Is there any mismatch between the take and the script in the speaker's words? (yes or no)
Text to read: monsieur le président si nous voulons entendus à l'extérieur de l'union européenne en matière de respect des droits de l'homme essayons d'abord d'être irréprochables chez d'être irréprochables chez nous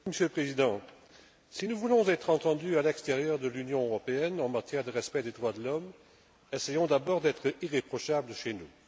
yes